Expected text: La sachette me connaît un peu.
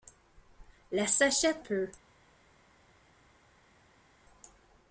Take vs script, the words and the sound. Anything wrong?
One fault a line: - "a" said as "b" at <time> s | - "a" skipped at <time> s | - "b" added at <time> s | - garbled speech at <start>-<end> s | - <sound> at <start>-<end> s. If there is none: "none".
- "me connaît un" skipped at 1.6 s